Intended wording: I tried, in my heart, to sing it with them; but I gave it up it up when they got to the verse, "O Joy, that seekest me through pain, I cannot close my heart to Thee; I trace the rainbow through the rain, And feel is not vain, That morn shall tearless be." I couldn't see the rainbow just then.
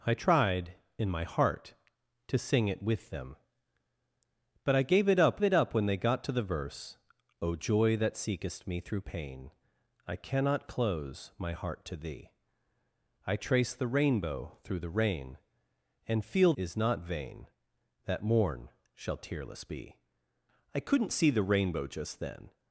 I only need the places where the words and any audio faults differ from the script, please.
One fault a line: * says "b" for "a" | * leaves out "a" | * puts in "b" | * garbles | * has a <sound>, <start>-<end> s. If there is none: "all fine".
all fine